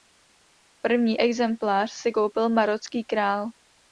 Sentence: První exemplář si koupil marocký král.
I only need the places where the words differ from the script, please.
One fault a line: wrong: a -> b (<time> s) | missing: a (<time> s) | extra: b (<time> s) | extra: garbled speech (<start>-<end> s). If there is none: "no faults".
no faults